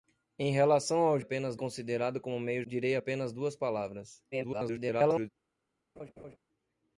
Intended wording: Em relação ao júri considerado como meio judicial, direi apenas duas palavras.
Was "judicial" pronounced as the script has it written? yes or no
no